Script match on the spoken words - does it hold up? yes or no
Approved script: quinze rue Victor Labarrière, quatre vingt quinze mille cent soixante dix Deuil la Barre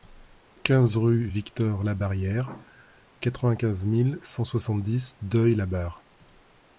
yes